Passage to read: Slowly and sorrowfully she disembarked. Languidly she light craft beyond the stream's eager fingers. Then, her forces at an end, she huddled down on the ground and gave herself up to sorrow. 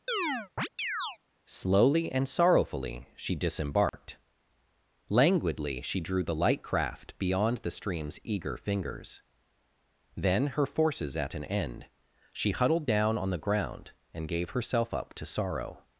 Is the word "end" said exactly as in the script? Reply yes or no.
yes